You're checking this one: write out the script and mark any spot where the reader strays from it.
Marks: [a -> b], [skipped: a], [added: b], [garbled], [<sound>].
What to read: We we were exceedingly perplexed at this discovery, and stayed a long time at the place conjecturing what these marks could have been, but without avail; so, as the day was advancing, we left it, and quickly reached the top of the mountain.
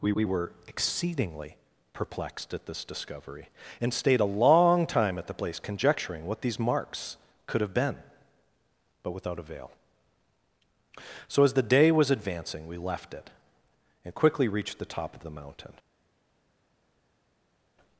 We we were exceedingly perplexed at this discovery, and stayed a long time at the place conjecturing what these marks could have been, but without avail; so, as the day was advancing, we left it, and quickly reached the top of the mountain.